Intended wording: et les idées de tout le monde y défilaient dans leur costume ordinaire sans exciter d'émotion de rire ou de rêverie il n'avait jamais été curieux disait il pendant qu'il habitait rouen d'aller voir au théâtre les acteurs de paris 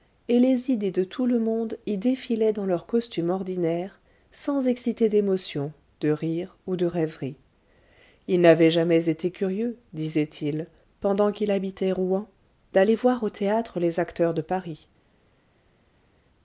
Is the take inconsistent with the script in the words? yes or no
no